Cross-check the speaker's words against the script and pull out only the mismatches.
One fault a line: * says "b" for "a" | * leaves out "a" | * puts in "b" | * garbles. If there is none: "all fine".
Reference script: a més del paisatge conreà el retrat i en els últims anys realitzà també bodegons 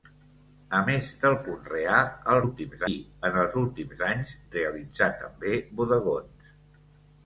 * leaves out "paisatge"
* says "últims" for "retrat"